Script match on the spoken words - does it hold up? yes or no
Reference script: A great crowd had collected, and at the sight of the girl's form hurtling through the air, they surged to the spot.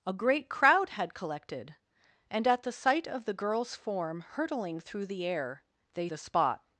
no